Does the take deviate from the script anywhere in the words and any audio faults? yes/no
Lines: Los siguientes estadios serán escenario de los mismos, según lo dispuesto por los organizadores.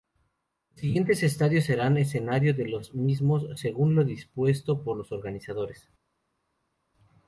no